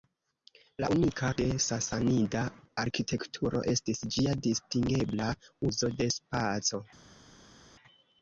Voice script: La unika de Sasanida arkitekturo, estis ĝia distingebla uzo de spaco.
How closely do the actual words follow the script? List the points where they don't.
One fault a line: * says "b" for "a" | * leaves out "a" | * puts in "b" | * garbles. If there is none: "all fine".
all fine